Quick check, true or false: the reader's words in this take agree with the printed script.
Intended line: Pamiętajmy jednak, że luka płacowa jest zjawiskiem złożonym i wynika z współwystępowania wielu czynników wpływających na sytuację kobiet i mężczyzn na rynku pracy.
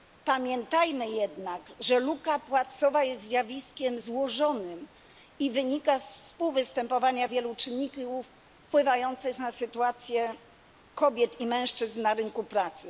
true